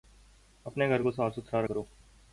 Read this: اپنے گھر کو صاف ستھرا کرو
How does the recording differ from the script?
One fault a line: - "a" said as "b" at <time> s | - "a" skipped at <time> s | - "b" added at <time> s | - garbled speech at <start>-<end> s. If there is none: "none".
none